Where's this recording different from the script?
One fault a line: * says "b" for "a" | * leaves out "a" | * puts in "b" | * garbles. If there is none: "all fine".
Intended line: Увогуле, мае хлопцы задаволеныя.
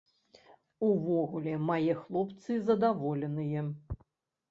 all fine